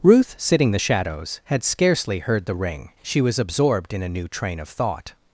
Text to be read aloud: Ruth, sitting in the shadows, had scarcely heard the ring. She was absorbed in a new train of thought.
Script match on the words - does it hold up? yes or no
no